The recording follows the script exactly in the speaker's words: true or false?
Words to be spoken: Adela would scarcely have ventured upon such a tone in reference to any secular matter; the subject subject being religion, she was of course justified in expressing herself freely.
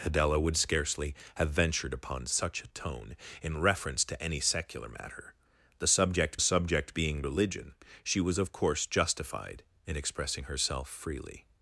true